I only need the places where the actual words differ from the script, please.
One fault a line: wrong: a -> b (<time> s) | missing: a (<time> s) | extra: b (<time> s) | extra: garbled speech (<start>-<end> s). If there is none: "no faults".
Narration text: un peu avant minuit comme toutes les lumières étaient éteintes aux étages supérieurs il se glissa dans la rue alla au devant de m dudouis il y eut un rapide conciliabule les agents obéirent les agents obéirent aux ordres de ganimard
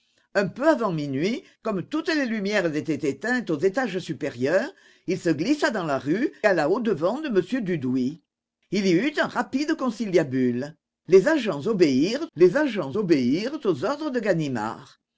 no faults